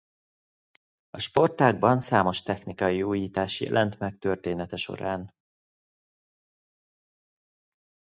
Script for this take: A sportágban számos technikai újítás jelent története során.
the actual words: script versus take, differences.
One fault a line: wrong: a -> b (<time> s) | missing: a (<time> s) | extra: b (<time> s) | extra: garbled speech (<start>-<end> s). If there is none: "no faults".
extra: meg (4.0 s)